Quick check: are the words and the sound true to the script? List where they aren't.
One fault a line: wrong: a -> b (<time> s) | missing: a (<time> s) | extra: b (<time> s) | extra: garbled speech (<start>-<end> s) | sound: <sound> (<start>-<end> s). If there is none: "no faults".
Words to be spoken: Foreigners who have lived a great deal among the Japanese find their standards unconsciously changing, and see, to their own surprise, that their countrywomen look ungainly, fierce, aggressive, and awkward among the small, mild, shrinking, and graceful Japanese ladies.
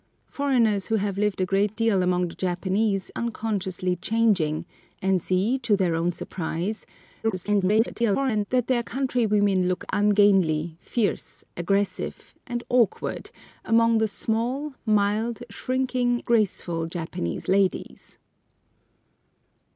missing: find their standards (3.1 s)
extra: garbled speech (7.2-8.5 s)
missing: and (16.2 s)